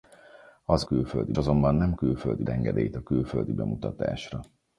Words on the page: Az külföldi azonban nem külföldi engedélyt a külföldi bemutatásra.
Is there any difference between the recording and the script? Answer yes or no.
no